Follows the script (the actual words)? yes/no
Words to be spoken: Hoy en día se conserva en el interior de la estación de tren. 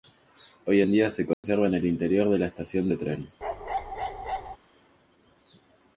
yes